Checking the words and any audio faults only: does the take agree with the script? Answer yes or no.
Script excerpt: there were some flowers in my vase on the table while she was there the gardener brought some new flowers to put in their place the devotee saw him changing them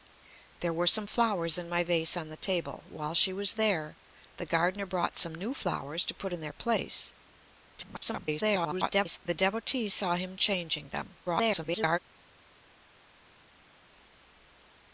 no